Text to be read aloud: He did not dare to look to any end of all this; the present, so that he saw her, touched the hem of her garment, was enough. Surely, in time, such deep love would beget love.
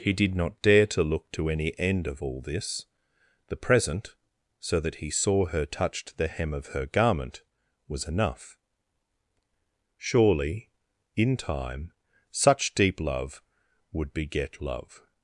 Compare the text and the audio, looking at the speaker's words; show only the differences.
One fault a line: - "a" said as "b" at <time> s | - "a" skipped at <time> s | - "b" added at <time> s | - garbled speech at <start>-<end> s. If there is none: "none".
none